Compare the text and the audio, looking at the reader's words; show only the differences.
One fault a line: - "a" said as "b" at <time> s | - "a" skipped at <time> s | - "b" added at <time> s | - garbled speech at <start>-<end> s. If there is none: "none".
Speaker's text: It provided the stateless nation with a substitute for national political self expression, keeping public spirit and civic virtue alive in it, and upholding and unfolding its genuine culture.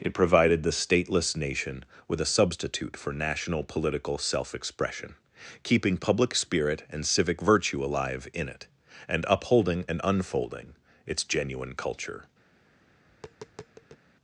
none